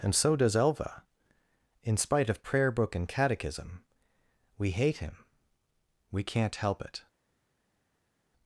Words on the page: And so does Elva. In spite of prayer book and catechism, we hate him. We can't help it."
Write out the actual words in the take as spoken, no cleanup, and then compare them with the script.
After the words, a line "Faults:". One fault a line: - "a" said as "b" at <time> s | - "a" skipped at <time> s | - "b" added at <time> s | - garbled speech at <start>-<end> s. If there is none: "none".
And so does Elva. In spite of prayer book and catechism, we hate him. We can't help it."
Faults:
none